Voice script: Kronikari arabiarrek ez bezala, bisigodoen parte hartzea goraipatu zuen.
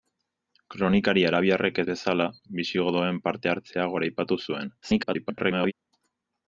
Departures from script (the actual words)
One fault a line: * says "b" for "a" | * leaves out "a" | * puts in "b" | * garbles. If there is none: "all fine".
* garbles